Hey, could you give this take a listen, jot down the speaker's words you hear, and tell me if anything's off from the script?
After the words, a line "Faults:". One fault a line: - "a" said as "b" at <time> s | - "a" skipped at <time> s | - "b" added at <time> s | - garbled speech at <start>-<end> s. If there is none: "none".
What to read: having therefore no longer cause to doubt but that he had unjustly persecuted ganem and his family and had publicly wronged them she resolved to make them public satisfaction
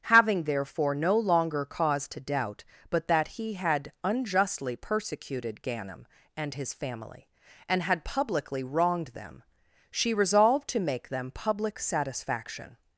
having therefore no longer cause to doubt but that he had unjustly persecuted ganem and his family and had publicly wronged them she resolved to make them public satisfaction
Faults:
none